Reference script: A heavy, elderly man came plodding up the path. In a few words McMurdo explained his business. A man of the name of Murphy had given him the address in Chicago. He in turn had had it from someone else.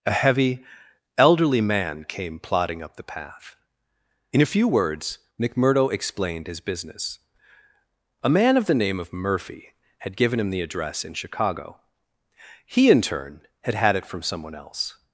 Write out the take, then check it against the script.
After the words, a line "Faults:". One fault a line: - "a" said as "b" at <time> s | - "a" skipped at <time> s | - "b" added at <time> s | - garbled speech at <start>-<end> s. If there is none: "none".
A heavy, elderly man came plodding up the path. In a few words McMurdo explained his business. A man of the name of Murphy had given him the address in Chicago. He in turn had had it from someone else.
Faults:
none